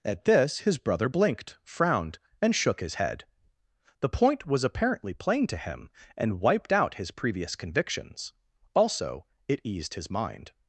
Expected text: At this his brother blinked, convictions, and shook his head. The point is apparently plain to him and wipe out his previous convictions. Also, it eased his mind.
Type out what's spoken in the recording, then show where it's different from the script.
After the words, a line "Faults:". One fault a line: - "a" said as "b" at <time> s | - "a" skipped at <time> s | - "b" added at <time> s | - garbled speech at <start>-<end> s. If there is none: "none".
At this his brother blinked, frowned, and shook his head. The point was apparently plain to him and wiped out his previous convictions. Also, it eased his mind.
Faults:
- "convictions" said as "frowned" at 1.6 s
- "is" said as "was" at 4.5 s
- "wipe" said as "wiped" at 6.4 s